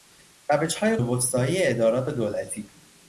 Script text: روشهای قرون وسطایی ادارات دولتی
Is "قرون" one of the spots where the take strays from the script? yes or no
yes